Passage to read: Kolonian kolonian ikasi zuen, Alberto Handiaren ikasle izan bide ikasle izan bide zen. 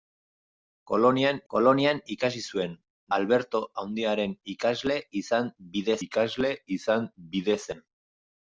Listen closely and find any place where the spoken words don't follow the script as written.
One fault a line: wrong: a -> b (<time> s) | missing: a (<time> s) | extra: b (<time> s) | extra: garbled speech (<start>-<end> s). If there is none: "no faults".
no faults